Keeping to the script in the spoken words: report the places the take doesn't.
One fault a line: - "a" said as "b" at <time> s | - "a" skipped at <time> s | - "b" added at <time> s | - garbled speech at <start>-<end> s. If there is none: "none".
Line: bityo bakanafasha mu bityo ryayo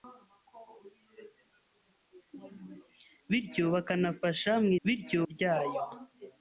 none